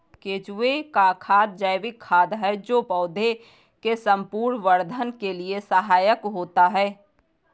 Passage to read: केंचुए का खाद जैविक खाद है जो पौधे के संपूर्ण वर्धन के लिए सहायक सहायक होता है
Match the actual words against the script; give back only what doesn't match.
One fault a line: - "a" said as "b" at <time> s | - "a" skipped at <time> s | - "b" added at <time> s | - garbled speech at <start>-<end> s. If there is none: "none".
- "सहायक" skipped at 6.2 s